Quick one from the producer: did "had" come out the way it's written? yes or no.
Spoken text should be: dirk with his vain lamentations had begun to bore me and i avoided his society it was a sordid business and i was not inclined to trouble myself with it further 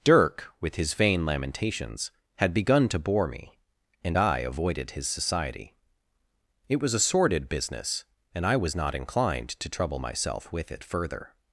yes